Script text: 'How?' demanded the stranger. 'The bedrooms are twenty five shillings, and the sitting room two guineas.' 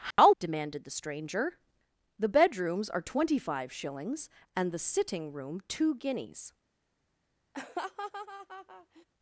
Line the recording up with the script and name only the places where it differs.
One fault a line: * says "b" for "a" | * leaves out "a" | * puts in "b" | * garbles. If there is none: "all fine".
all fine